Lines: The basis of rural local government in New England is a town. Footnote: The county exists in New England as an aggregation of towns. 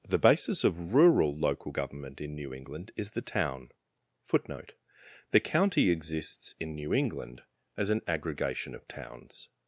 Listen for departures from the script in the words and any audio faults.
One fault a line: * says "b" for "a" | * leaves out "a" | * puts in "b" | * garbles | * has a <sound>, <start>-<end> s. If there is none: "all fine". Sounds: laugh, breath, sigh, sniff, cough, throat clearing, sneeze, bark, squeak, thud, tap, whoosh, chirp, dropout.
* says "the" for "a"